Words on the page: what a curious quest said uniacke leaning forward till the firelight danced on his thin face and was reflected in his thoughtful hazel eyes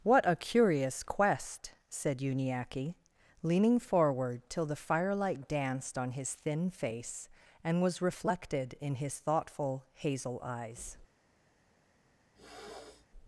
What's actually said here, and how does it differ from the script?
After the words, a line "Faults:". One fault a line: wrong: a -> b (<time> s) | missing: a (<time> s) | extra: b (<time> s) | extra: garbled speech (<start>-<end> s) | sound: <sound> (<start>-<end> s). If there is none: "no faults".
what a curious quest said uniacke leaning forward till the firelight danced on his thin face and was reflected in his thoughtful hazel eyes
Faults:
sound: throat clearing (12.4-13.1 s)